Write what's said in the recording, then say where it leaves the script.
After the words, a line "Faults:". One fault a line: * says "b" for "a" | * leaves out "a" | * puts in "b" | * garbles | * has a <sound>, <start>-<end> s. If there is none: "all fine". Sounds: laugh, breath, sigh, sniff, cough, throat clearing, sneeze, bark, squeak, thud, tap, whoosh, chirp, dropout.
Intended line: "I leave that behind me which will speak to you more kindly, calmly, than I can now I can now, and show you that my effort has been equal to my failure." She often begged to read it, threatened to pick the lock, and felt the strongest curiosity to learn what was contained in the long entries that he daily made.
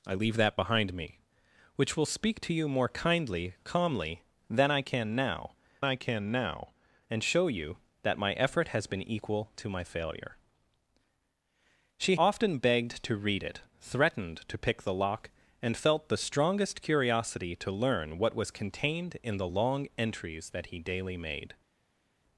"I leave that behind me which will speak to you more kindly, calmly, than I can now I can now, and show you that my effort has been equal to my failure." She often begged to read it, threatened to pick the lock, and felt the strongest curiosity to learn what was contained in the long entries that he daily made.
Faults:
all fine